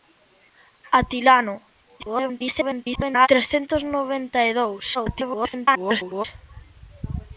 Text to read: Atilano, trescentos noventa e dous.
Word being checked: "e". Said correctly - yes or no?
yes